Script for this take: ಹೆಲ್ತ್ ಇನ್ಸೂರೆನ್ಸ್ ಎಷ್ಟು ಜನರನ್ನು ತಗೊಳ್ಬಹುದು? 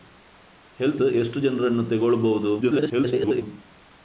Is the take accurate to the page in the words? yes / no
no